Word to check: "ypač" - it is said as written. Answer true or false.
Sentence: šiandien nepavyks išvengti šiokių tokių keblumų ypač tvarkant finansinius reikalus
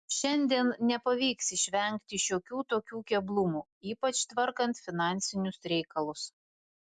true